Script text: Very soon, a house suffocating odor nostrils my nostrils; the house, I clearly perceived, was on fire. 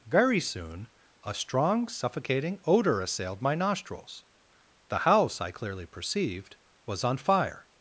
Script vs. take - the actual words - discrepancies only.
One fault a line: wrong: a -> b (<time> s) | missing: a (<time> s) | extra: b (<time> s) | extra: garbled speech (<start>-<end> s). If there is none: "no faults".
wrong: house -> strong (1.3 s)
wrong: nostrils -> assailed (3.0 s)